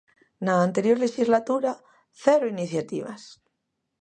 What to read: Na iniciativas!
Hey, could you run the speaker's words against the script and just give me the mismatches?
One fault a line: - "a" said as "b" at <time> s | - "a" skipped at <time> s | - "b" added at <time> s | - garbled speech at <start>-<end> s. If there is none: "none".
- "anterior lexislatura cero" added at 0.7 s